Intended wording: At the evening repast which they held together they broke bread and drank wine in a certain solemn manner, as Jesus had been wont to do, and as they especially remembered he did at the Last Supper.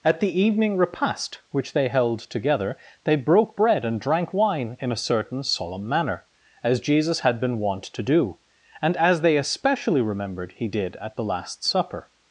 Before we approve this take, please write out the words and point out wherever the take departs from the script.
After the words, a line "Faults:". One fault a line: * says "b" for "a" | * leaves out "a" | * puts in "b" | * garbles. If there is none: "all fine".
At the evening repast which they held together they broke bread and drank wine in a certain solemn manner, as Jesus had been wont to do, and as they especially remembered he did at the Last Supper.
Faults:
all fine